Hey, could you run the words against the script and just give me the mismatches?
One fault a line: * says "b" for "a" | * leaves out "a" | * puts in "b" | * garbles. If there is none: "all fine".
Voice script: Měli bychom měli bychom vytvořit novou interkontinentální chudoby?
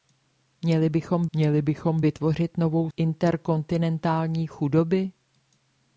all fine